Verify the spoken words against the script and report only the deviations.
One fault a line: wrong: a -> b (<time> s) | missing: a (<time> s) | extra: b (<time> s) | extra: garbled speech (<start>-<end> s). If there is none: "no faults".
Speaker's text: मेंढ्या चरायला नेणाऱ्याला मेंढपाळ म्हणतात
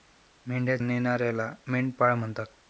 missing: चरायला (0.8 s)